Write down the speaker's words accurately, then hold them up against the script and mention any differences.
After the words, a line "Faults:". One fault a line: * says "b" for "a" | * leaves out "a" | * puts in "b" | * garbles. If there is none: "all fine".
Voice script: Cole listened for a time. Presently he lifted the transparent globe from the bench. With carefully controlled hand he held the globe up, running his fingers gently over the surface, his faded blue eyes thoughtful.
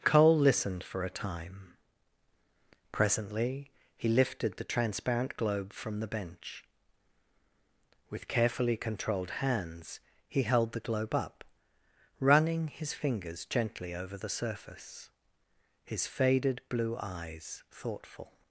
Cole listened for a time. Presently he lifted the transparent globe from the bench. With carefully controlled hands he held the globe up, running his fingers gently over the surface, his faded blue eyes thoughtful.
Faults:
* says "hands" for "hand"